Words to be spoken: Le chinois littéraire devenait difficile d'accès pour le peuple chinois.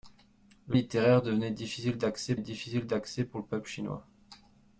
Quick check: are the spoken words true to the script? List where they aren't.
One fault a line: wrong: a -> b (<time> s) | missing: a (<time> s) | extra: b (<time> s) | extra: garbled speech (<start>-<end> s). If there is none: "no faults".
missing: chinois (0.8 s)
extra: difficile d'accès (2.4 s)